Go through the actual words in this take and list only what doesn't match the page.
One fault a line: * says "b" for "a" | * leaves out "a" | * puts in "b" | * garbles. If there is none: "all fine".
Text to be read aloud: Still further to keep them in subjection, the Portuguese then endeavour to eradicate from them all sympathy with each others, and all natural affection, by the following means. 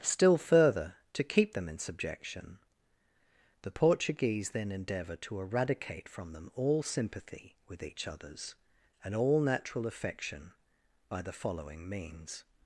all fine